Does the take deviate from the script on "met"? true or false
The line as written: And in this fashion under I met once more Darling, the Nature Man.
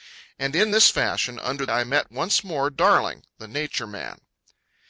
false